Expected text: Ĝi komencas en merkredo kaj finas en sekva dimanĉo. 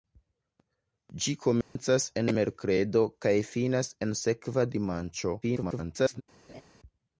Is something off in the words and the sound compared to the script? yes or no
yes